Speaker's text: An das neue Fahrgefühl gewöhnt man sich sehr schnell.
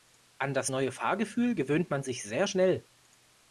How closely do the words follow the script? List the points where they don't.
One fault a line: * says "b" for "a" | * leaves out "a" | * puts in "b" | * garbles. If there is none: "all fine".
all fine